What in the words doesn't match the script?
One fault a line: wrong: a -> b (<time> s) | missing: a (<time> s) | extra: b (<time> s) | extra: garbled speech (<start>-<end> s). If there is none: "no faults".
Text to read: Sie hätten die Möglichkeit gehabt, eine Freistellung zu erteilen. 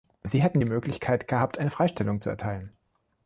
no faults